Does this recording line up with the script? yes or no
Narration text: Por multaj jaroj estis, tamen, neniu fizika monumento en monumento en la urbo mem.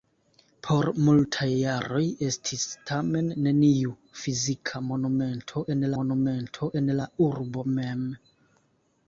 yes